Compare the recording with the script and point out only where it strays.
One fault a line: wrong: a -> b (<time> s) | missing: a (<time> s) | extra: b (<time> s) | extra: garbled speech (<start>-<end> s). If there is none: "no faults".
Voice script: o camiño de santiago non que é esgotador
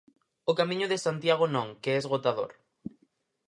no faults